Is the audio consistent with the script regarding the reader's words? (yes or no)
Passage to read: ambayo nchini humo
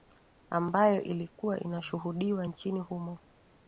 no